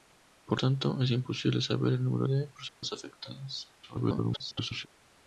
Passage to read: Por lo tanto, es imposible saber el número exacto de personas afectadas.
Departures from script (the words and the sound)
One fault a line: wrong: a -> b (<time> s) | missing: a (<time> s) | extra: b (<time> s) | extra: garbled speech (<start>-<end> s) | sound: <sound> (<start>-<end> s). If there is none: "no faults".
missing: lo (0.6 s)
missing: exacto (2.3 s)
sound: dropout (2.7-2.8 s)
extra: garbled speech (3.8-4.9 s)